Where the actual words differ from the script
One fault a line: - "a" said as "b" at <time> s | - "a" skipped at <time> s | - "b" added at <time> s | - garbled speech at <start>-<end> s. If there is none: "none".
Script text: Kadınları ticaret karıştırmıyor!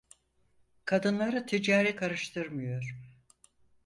none